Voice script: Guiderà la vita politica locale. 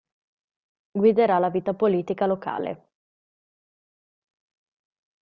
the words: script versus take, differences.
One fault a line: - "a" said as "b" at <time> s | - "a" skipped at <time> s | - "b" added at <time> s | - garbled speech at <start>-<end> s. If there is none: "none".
none